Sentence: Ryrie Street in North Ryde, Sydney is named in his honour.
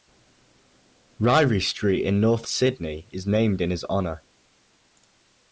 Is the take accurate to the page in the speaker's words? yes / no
no